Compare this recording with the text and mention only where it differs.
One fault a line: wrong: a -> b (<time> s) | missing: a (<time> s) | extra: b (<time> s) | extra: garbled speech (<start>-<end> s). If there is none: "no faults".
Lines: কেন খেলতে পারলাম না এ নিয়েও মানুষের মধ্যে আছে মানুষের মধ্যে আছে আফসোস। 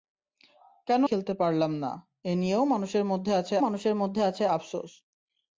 no faults